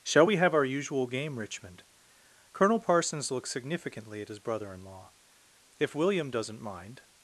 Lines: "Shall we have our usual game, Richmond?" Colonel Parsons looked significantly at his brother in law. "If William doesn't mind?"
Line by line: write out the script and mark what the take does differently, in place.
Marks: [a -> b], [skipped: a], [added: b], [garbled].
"Shall we have our usual game, Richmond?" Colonel Parsons [looked -> looks] significantly at his brother in law. "If William doesn't mind?"